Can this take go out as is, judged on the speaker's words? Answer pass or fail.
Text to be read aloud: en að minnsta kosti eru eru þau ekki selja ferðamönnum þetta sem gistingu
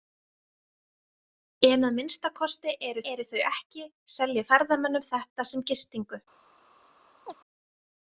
pass